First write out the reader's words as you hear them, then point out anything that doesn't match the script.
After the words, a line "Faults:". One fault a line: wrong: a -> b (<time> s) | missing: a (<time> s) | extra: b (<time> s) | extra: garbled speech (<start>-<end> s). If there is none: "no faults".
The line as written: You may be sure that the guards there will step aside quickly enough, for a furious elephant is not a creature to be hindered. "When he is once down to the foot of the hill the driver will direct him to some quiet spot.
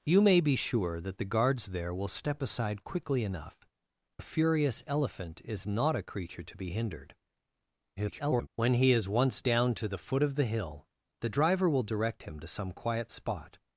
You may be sure that the guards there will step aside quickly enough, a furious elephant is not a creature to be hindered. [garbled] "When he is once down to the foot of the hill the driver will direct him to some quiet spot.
Faults:
missing: for (3.6 s)
extra: garbled speech (8.0-8.5 s)